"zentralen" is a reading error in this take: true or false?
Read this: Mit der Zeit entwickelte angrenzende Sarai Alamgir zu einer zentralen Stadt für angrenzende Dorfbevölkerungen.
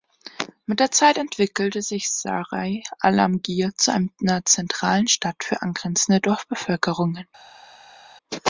false